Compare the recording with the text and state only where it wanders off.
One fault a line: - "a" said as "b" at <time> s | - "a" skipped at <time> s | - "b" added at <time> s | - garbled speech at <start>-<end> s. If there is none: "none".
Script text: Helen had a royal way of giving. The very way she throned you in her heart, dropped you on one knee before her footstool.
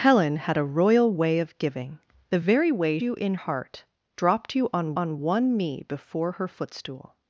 - "she throned" skipped at 3.0 s
- "her" skipped at 3.3 s
- "on" added at 4.9 s